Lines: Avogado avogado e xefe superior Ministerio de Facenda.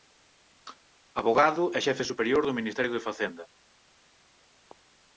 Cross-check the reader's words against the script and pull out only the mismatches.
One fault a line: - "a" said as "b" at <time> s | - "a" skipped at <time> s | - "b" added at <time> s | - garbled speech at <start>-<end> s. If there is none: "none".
- "avogado" skipped at 1.6 s
- "do" added at 2.5 s